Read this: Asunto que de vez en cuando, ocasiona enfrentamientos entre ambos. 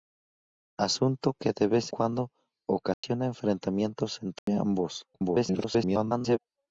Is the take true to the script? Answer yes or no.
no